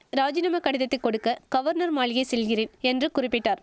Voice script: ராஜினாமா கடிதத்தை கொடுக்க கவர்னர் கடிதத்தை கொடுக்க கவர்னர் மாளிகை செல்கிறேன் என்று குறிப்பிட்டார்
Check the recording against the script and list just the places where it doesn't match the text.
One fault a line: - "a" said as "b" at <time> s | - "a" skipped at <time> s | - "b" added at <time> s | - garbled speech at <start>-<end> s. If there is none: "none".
- "கடிதத்தை கொடுக்க கவர்னர்" skipped at 1.9 s